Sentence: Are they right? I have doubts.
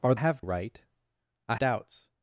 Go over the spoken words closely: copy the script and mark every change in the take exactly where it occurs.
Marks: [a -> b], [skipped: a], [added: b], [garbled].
Are [they -> have] right? I [skipped: have] doubts.